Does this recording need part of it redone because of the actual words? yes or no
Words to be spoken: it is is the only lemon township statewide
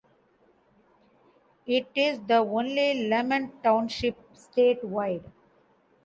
yes